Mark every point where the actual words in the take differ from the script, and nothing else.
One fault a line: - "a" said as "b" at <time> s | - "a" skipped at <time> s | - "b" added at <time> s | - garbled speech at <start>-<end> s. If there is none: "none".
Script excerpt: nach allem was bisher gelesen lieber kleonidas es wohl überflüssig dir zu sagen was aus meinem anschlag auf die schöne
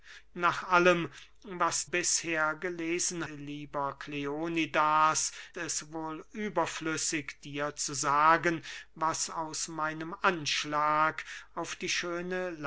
none